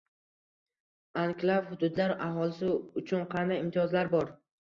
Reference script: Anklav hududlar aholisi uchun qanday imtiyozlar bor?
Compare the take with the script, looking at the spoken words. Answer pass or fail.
pass